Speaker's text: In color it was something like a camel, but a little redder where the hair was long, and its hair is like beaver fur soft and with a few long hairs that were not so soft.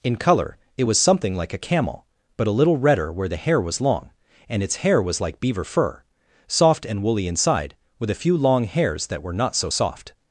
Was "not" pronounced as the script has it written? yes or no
yes